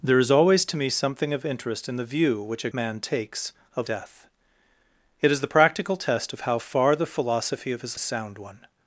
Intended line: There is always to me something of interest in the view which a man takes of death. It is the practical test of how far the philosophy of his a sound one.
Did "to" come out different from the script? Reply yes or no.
no